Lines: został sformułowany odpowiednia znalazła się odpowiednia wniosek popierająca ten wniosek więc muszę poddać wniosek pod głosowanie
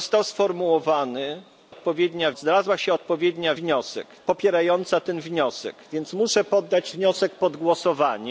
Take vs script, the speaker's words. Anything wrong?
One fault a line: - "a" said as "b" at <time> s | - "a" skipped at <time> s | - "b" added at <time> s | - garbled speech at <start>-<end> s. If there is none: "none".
none